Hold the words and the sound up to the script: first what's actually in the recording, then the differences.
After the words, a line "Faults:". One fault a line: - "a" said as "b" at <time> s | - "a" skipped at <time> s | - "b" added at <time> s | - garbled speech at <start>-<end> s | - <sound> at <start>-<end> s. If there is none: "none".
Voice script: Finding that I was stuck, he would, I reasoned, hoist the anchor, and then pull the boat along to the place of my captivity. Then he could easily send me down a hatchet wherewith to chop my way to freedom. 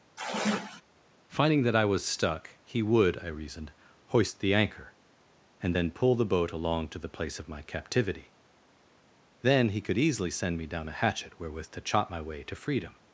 Finding that I was stuck, he would, I reasoned, hoist the anchor, and then pull the boat along to the place of my captivity. Then he could easily send me down a hatchet wherewith to chop my way to freedom.
Faults:
- sigh at 0.2-0.8 s